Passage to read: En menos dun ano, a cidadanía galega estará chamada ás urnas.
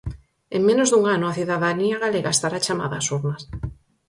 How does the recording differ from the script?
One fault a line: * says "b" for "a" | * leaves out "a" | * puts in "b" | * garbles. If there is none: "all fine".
all fine